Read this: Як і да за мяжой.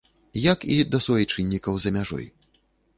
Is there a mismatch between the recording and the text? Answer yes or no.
yes